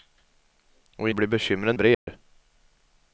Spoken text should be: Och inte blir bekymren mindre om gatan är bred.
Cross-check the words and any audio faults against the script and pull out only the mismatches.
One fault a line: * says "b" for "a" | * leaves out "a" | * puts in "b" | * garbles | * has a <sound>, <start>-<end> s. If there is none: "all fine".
* leaves out "inte"
* leaves out "mindre om gatan"
* has a dropout, 1.9-2.1 s